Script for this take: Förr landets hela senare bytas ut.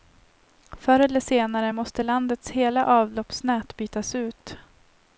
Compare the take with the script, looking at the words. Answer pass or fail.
fail